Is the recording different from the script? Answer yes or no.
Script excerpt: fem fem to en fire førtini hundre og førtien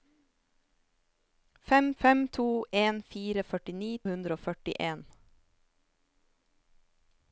no